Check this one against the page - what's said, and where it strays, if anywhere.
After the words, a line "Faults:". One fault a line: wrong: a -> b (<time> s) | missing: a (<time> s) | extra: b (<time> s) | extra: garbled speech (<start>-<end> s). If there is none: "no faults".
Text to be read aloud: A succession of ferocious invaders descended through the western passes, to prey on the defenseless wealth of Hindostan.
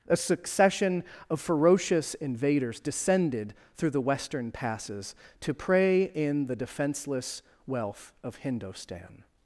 A succession of ferocious invaders descended through the western passes, to prey in the defenseless wealth of Hindostan.
Faults:
wrong: on -> in (6.0 s)